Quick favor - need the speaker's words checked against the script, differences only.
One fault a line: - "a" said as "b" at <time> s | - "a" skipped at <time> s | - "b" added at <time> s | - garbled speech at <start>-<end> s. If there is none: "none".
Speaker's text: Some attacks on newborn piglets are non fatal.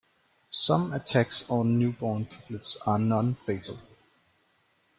none